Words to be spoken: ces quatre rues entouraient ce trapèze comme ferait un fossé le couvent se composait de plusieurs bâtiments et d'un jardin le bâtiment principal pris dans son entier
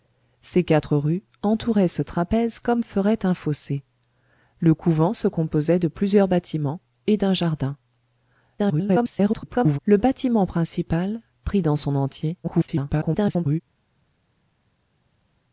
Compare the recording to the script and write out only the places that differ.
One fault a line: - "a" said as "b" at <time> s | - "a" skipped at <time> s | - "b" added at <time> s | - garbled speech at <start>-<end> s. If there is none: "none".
- garbled speech at 8.6-9.8 s
- garbled speech at 12.4-13.6 s